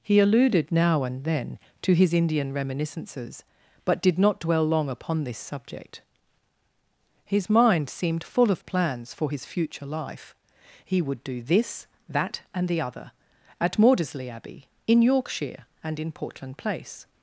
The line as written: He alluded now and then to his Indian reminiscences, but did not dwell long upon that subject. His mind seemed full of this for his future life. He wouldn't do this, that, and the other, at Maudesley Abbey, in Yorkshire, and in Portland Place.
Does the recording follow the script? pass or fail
fail